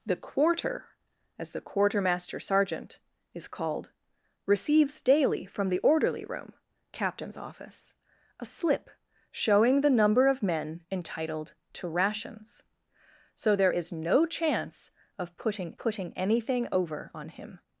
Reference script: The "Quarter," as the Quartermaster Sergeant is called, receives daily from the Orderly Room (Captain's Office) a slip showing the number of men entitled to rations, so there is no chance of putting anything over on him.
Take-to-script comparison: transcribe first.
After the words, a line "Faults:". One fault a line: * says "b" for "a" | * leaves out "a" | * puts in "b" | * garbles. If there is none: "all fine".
The "Quarter," as the Quartermaster Sergeant is called, receives daily from the Orderly Room (Captain's Office) a slip showing the number of men entitled to rations, so there is no chance of putting putting anything over on him.
Faults:
* puts in "putting"